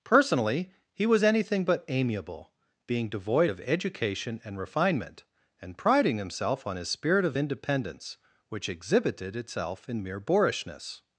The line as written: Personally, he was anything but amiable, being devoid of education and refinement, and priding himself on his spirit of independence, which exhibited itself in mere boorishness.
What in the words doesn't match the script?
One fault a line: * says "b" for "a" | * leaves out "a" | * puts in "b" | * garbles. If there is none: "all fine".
all fine